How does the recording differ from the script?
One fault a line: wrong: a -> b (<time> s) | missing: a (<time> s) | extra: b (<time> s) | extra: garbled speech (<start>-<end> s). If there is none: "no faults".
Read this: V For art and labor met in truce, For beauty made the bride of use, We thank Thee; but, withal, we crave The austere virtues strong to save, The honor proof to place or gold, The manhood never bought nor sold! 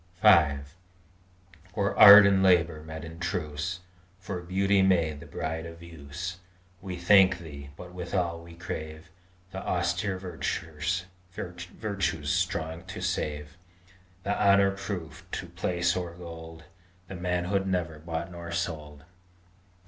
no faults